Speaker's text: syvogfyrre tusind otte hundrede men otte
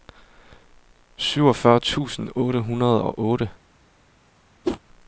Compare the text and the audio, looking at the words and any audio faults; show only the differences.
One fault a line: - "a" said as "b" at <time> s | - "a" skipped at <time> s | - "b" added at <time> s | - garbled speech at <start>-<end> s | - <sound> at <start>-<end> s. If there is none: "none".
- "men" said as "og" at 3.0 s
- whoosh at 4.6-4.8 s